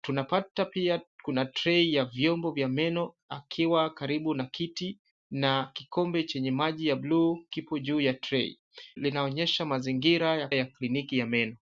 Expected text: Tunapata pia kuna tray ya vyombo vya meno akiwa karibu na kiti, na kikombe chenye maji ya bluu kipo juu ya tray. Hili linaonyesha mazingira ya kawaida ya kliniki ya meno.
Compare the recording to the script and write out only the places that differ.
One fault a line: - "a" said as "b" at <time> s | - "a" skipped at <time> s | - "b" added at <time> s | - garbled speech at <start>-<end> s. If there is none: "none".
- "Hili" skipped at 8.6 s
- "kawaida" skipped at 10.5 s